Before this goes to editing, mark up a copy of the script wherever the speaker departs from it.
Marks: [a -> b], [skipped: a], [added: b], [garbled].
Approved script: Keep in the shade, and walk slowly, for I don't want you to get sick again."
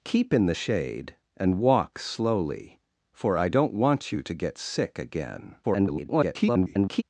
Keep in the shade, and walk slowly, for I don't want you to get sick again." [garbled]